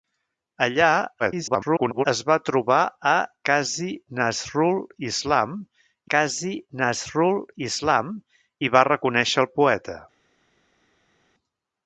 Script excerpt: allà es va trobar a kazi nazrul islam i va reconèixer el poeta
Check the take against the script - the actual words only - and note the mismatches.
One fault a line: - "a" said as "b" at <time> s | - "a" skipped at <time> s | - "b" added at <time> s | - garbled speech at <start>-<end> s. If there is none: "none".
- garbled speech at 1.2-2.1 s
- "kazi nazrul islam" added at 6.2 s